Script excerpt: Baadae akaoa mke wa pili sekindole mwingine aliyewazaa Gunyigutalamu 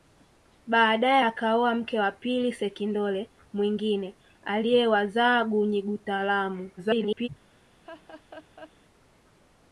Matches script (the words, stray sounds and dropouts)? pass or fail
fail